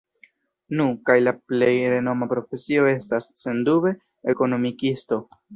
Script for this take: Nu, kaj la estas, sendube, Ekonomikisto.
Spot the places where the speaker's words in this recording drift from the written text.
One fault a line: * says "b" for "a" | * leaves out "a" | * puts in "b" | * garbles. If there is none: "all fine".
* puts in "plej renoma profesio"